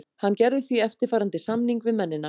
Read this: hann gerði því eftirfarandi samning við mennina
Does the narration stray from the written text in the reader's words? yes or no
no